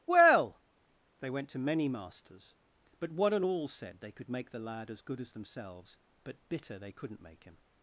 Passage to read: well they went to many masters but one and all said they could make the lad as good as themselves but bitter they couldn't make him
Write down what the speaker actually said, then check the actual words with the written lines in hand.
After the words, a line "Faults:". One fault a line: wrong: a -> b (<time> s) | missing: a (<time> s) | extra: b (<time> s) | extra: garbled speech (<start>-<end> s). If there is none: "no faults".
well they went to many masters but one and all said they could make the lad as good as themselves but bitter they couldn't make him
Faults:
no faults